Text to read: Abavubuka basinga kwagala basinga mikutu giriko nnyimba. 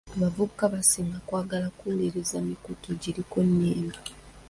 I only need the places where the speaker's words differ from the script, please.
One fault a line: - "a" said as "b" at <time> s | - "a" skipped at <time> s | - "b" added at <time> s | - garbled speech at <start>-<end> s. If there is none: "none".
- "basinga" said as "kuwuliriza" at 1.8 s